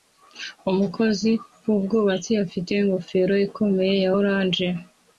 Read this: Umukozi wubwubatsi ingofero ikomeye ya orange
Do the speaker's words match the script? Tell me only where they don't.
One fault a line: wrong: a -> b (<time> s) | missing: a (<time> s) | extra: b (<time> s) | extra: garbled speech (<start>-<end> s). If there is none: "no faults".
extra: afite (2.5 s)